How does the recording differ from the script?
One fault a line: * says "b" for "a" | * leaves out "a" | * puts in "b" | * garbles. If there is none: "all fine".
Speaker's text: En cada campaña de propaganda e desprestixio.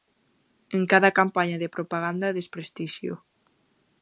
all fine